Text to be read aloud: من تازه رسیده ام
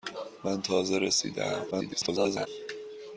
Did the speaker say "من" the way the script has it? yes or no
yes